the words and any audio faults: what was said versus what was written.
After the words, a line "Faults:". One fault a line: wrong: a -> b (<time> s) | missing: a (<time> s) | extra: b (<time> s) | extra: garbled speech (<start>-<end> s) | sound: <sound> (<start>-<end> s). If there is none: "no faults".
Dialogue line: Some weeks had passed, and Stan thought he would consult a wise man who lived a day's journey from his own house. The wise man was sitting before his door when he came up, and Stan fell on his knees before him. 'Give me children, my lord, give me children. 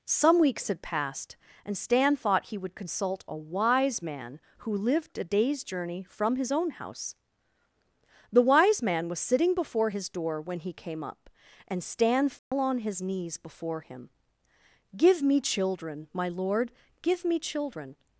Some weeks had passed, and Stan thought he would consult a wise man who lived a day's journey from his own house. The wise man was sitting before his door when he came up, and Stan fell on his knees before him. 'Give me children, my lord, give me children.
Faults:
sound: dropout (12.4-12.5 s)